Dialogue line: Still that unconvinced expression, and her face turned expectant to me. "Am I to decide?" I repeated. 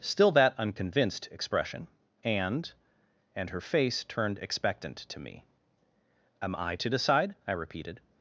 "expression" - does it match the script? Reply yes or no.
yes